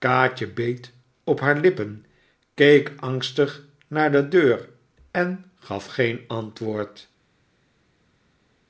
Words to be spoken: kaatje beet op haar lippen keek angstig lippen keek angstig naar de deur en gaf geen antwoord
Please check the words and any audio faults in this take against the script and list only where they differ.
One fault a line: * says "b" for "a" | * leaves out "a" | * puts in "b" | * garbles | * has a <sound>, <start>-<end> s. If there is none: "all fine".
* leaves out "lippen keek angstig"